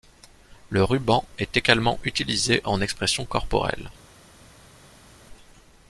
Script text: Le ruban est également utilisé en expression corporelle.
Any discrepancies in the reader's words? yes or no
no